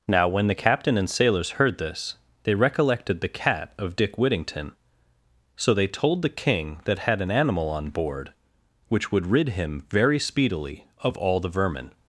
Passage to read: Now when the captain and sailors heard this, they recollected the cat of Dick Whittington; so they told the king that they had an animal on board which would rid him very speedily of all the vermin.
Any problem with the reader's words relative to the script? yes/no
yes